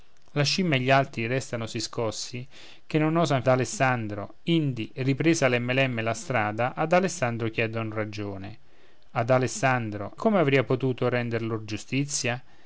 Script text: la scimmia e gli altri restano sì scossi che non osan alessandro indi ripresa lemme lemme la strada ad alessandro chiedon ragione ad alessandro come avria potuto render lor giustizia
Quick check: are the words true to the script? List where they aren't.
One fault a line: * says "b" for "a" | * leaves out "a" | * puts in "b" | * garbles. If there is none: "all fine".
all fine